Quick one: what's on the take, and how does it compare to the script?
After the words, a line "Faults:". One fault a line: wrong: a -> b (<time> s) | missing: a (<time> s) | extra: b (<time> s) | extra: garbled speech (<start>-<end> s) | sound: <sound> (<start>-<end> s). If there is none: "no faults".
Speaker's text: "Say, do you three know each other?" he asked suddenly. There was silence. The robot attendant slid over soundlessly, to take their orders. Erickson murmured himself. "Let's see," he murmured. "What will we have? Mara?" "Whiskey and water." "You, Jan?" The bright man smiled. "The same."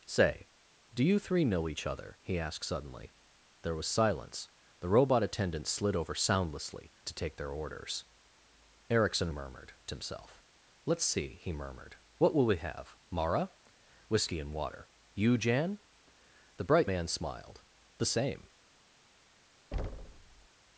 "Say, do you three know each other?" he asked suddenly. There was silence. The robot attendant slid over soundlessly, to take their orders. Erickson murmured himself. "Let's see," he murmured. "What will we have? Mara?" "Whiskey and water." "You, Jan?" The bright man smiled. "The same."
Faults:
sound: thud (19.7-20.5 s)